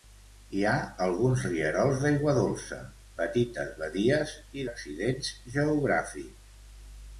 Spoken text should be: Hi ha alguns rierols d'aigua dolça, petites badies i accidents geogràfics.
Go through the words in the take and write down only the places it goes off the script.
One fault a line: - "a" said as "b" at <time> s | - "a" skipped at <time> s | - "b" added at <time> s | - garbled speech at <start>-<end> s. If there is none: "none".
none